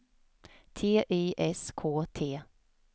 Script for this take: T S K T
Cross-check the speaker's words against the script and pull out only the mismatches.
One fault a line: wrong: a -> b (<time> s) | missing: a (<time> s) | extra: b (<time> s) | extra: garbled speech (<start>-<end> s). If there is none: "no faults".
extra: Y (1.1 s)